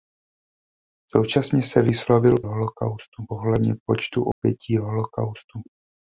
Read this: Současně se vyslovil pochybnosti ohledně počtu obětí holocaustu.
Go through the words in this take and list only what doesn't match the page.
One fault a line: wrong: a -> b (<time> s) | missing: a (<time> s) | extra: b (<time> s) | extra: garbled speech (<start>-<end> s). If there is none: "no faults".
wrong: pochybnosti -> holocaustu (2.4 s)